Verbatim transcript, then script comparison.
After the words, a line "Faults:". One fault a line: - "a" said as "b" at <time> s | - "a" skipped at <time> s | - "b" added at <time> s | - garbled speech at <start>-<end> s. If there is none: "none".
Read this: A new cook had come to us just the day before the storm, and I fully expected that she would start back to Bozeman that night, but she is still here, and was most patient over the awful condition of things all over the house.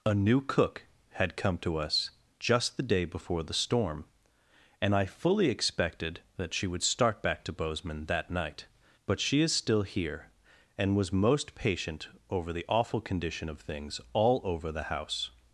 A new cook had come to us just the day before the storm, and I fully expected that she would start back to Bozeman that night, but she is still here, and was most patient over the awful condition of things all over the house.
Faults:
none